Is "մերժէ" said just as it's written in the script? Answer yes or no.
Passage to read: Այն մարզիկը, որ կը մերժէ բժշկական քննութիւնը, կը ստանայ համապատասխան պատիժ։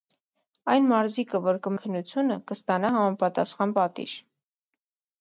no